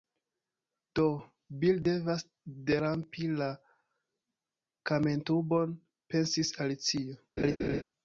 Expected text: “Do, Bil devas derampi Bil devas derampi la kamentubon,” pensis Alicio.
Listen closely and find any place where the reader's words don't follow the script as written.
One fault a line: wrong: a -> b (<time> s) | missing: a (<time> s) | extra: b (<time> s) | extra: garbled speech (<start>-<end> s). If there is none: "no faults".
missing: Bil devas derampi (3.3 s)